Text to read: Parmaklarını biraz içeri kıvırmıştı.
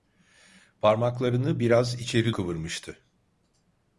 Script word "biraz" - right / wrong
right